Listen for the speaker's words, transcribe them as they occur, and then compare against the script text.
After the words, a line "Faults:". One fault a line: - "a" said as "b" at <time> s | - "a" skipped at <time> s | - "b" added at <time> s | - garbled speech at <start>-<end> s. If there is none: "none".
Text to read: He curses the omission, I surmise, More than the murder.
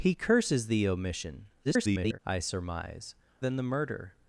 He curses the omission, [garbled] I surmise, Than the murder.
Faults:
- garbled speech at 1.6-2.2 s
- "More" skipped at 3.2 s